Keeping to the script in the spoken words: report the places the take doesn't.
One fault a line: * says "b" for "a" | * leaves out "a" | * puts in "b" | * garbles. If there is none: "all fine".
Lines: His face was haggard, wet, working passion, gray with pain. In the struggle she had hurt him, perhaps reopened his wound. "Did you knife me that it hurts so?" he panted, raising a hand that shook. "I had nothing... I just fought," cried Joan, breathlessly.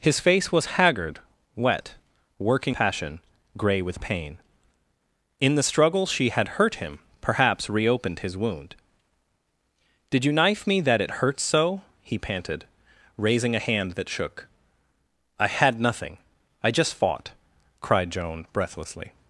all fine